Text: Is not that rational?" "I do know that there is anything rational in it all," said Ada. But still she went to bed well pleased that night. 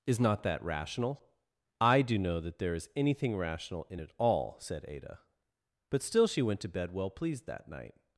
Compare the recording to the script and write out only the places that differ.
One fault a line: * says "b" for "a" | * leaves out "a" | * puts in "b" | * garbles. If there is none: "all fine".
all fine